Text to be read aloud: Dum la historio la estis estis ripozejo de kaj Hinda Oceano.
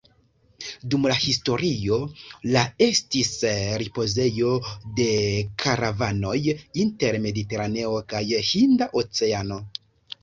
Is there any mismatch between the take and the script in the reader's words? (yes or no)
yes